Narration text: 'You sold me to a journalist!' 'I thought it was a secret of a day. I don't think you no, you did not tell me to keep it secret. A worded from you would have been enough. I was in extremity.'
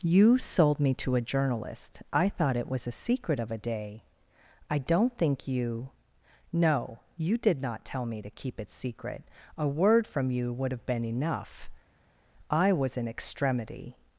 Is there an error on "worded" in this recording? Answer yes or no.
yes